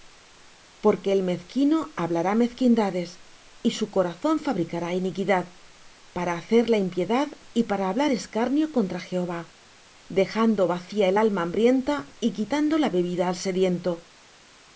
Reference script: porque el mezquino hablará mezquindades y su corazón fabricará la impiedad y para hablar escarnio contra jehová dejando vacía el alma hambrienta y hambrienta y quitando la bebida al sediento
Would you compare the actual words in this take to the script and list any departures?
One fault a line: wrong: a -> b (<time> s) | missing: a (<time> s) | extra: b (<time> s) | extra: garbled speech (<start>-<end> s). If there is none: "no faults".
extra: iniquidad para hacer (5.0 s)
missing: hambrienta y (12.3 s)